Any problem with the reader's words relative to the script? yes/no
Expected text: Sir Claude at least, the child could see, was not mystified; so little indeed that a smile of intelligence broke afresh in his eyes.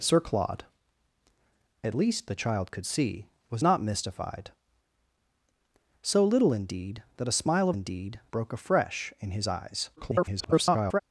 yes